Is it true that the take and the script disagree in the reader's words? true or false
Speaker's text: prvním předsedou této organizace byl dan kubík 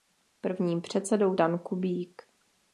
true